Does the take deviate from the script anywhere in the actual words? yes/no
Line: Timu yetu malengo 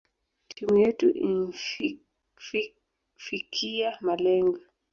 yes